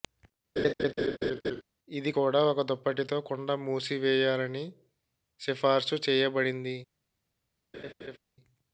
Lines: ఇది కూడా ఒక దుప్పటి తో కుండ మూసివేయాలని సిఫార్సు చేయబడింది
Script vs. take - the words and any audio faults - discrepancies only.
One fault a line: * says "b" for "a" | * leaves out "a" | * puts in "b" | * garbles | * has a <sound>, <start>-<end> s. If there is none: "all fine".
* has a laugh, 0.6-1.6 s
* has a laugh, 7.7-8.2 s